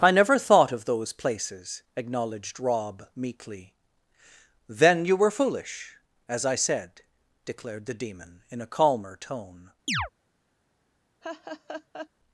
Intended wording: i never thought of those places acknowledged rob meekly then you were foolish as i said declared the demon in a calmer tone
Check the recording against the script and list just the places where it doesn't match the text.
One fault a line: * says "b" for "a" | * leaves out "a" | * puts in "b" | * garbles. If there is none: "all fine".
all fine